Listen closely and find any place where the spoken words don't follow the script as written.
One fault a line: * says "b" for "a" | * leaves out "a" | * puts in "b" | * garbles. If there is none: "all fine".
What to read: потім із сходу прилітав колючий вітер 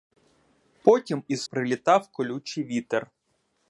* leaves out "сходу"